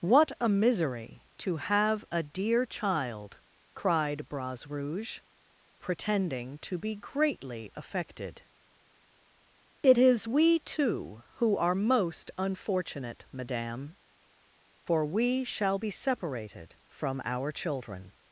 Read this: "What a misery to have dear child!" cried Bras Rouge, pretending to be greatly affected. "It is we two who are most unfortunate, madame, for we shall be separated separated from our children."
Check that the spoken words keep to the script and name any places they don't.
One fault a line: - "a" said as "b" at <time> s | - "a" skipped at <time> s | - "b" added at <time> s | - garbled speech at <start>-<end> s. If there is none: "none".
- "a" added at 2.1 s
- "separated" skipped at 16.8 s